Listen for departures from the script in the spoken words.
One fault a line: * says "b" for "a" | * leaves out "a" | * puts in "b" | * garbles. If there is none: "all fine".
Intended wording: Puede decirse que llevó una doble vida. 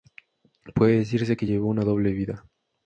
all fine